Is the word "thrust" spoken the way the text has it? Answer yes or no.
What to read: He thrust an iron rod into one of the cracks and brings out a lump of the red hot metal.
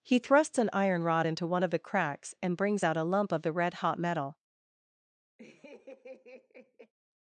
no